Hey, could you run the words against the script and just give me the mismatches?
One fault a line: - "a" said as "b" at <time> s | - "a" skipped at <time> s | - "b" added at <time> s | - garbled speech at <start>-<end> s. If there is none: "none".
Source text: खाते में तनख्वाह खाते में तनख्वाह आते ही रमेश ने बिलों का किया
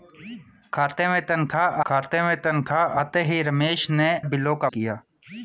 none